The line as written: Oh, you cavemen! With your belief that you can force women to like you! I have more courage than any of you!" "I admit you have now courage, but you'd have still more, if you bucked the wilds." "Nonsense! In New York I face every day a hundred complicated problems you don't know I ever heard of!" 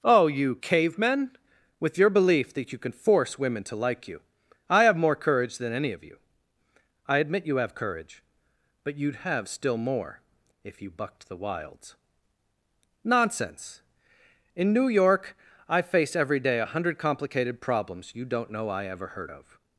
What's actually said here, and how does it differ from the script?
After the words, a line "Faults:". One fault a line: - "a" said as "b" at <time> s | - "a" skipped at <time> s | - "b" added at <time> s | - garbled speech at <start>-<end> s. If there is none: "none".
Oh, you cavemen! With your belief that you can force women to like you! I have more courage than any of you!" "I admit you have courage, but you'd have still more, if you bucked the wilds." "Nonsense! In New York I face every day a hundred complicated problems you don't know I ever heard of!"
Faults:
- "now" skipped at 7.7 s